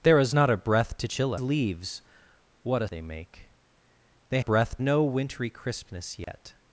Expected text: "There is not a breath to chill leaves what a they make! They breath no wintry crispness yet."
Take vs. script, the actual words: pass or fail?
pass